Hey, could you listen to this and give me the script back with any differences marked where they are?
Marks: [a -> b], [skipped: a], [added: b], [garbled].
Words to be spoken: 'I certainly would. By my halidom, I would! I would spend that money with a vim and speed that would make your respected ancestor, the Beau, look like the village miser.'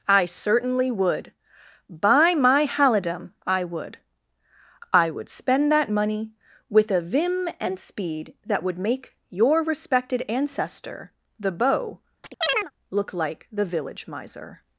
'I certainly would. By my halidom, I would! I would spend that money with a vim and speed that would make your respected ancestor, the Beau, look like the village miser.'